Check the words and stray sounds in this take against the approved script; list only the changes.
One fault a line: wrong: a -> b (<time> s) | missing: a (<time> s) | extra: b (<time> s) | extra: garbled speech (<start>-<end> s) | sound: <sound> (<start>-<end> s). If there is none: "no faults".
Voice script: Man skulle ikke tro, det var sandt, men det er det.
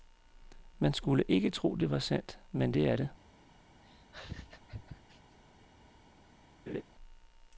sound: laugh (3.8-5.4 s)
sound: laugh (6.7-6.8 s)